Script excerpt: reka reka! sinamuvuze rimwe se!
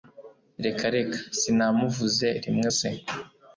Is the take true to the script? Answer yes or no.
yes